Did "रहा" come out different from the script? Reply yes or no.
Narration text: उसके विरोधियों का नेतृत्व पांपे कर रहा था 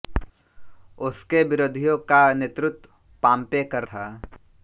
yes